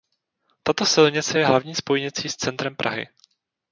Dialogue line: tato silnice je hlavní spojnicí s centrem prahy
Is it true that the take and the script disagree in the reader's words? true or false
false